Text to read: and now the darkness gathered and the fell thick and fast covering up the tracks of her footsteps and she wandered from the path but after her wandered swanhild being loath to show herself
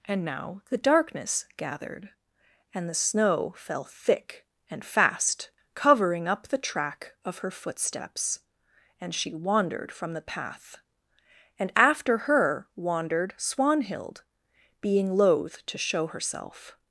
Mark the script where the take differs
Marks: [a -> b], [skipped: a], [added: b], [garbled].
and now the darkness gathered and the [added: snow] fell thick and fast covering up the [tracks -> track] of her footsteps and she wandered from the path [but -> and] after her wandered swanhild being loath to show herself